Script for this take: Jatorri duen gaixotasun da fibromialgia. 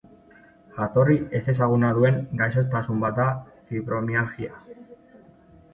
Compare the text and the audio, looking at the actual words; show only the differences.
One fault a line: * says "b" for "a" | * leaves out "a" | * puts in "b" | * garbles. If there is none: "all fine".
* puts in "ezezaguna"
* puts in "bat"